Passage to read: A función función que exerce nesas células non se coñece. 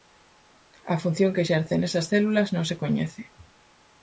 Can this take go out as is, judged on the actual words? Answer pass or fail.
fail